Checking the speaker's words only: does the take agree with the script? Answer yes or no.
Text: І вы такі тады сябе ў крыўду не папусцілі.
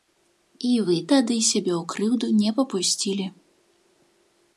no